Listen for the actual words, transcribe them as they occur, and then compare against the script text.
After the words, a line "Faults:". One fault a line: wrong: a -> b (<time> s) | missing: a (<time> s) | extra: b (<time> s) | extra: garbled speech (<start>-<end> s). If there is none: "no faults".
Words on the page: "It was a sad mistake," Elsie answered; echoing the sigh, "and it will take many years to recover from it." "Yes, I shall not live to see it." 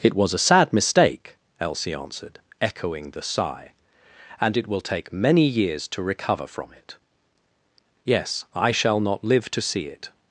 "It was a sad mistake," Elsie answered; echoing the sigh, "and it will take many years to recover from it." "Yes, I shall not live to see it."
Faults:
no faults